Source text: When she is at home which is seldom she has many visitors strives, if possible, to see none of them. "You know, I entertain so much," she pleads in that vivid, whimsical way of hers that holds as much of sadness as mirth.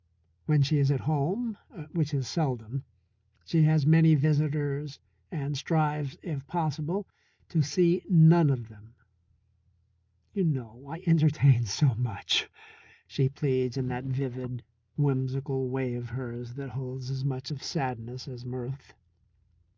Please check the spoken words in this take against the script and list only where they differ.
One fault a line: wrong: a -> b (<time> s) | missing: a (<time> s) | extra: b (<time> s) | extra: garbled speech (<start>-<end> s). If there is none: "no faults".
extra: and (5.3 s)